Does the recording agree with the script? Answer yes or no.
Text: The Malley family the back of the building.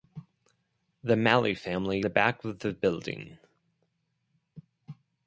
yes